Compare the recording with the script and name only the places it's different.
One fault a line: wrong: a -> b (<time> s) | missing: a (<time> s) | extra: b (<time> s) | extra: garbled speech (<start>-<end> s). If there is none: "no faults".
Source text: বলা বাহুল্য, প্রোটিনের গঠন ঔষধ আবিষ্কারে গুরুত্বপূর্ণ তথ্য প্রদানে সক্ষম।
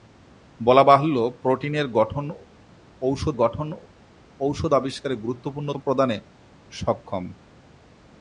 extra: গঠন ঔষধ (3.3 s)
missing: তথ্য (5.7 s)